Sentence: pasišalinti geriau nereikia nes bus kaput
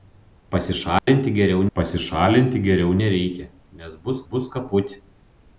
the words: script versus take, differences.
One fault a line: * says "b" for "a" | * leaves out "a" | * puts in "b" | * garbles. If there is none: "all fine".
* puts in "pasišalinti geriau"
* puts in "bus"